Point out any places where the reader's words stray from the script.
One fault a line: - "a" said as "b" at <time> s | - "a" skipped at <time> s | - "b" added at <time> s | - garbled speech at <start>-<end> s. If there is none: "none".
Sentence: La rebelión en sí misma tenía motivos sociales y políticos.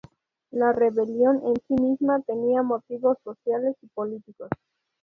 none